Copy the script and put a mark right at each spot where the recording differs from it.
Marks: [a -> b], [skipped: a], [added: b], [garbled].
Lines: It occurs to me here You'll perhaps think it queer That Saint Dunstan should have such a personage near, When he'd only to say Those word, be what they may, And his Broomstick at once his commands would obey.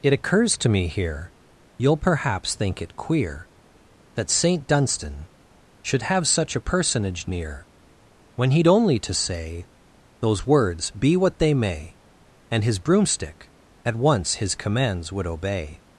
It occurs to me here You'll perhaps think it queer That Saint Dunstan should have such a personage near, When he'd only to say Those [word, -> words] be what they may, And his Broomstick at once his commands would obey.